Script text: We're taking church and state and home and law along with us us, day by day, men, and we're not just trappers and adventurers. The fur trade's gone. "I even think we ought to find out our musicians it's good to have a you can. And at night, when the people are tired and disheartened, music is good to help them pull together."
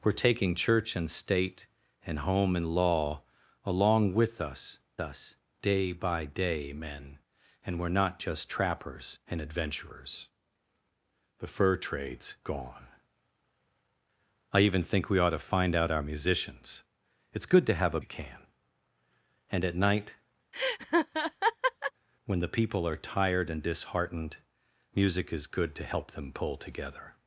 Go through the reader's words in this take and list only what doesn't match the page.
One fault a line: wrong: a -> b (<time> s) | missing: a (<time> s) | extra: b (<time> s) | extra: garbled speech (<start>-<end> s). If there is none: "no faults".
no faults